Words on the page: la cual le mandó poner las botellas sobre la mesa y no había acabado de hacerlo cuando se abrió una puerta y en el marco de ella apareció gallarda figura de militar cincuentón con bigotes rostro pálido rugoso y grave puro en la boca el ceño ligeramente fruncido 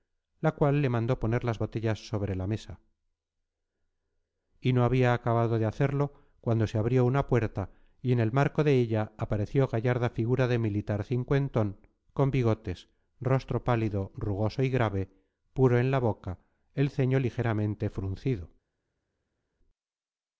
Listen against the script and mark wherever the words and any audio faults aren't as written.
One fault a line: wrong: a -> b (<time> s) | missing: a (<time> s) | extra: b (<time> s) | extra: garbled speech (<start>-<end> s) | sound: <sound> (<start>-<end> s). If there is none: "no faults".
no faults